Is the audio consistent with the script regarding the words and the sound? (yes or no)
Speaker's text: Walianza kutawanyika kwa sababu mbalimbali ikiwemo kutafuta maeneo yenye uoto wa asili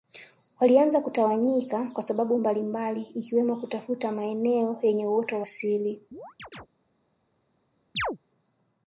no